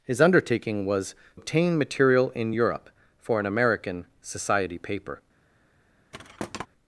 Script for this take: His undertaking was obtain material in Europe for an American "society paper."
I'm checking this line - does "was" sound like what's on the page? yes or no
yes